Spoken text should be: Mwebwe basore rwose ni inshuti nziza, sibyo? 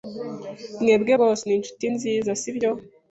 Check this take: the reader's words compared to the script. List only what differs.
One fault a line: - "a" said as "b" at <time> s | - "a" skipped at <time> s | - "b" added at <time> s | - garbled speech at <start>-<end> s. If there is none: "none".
- "basore" skipped at 1.1 s